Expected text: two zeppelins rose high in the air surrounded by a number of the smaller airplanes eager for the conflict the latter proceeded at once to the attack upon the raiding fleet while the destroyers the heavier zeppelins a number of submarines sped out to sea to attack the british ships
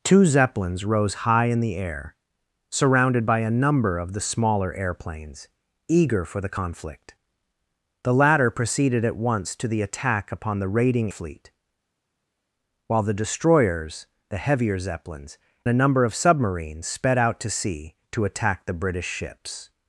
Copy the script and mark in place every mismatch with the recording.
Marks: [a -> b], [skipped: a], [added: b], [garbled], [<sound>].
two zeppelins rose high in the air surrounded by a number of the smaller airplanes eager for the conflict the latter proceeded at once to the attack upon the raiding fleet while the destroyers the heavier zeppelins a number of submarines sped out to sea to attack the british ships